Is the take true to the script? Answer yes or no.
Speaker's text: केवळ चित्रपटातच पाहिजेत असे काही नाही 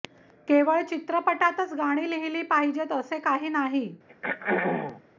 no